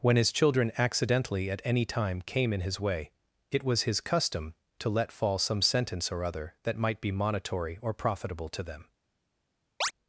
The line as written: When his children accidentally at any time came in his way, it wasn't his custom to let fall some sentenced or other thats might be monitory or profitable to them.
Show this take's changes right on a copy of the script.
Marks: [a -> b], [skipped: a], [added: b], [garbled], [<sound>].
When his children accidentally at any time came in his way, it [wasn't -> was] his custom to let fall some [sentenced -> sentence] or other [thats -> that] might be monitory or profitable to them. [chirp]